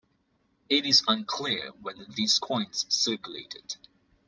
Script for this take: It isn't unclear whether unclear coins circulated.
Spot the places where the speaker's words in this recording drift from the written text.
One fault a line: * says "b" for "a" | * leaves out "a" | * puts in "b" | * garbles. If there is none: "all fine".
* says "is" for "isn't"
* says "these" for "unclear"